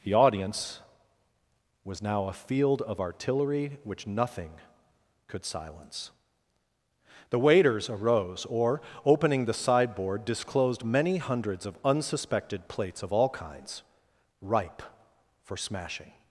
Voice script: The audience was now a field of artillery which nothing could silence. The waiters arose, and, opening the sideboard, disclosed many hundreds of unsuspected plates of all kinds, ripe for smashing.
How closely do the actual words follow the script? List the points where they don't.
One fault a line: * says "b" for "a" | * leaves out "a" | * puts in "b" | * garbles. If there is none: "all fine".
* says "or" for "and"